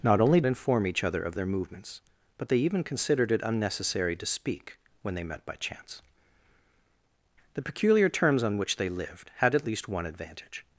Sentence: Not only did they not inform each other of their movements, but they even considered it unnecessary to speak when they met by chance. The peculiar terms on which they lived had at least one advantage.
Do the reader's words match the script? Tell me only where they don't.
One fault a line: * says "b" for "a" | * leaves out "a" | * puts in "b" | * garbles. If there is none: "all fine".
* leaves out "did they not"